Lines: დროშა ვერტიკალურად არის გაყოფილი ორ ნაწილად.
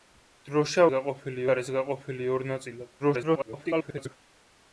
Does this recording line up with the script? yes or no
no